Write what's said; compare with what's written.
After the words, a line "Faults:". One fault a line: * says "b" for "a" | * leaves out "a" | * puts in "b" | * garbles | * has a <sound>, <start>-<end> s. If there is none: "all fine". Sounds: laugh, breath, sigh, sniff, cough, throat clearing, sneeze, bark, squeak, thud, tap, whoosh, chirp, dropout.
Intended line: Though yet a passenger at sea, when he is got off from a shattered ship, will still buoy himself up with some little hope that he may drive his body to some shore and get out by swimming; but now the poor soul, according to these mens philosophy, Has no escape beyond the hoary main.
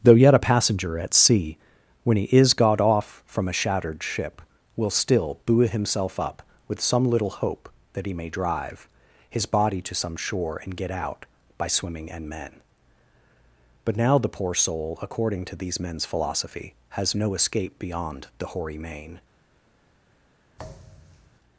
Though yet a passenger at sea, when he is got off from a shattered ship, will still buoy himself up with some little hope that he may drive his body to some shore and get out by swimming; and men but now the poor soul, according to these mens philosophy, Has no escape beyond the hoary main.
Faults:
* puts in "and men"
* has a thud, 20.6-21.4 s